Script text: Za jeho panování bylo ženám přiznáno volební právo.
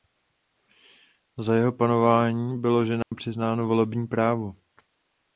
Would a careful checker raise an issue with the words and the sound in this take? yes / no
yes